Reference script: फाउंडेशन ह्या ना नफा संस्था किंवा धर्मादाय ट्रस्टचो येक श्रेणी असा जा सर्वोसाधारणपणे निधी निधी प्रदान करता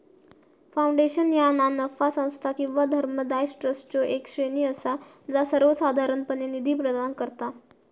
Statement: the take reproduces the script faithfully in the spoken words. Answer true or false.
false